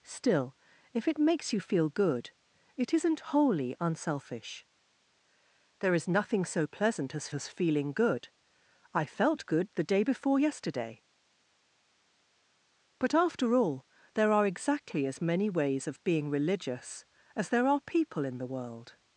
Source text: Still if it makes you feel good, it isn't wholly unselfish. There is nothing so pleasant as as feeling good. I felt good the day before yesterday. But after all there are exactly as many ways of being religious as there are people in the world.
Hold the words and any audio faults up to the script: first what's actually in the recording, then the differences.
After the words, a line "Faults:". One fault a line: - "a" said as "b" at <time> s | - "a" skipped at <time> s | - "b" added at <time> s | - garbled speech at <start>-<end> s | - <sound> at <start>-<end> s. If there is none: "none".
Still if it makes you feel good, it isn't wholly unselfish. There is nothing so pleasant as as feeling good. I felt good the day before yesterday. But after all there are exactly as many ways of being religious as there are people in the world.
Faults:
none